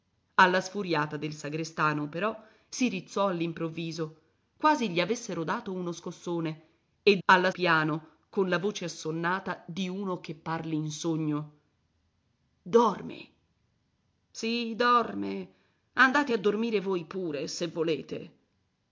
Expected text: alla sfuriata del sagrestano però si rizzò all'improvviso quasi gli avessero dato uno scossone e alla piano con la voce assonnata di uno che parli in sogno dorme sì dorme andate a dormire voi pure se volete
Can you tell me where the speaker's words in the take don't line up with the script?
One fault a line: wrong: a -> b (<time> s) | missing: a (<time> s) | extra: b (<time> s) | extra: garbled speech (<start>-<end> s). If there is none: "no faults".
no faults